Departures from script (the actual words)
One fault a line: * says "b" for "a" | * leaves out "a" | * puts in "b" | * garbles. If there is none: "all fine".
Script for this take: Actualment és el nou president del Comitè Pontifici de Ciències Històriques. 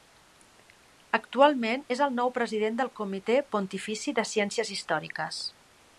all fine